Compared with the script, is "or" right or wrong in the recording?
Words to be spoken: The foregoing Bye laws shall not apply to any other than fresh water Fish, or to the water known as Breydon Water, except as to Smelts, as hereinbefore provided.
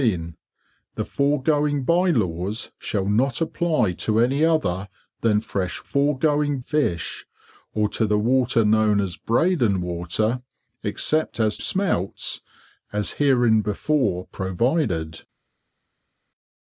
right